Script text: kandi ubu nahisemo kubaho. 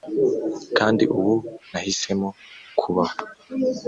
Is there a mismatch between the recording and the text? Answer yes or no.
no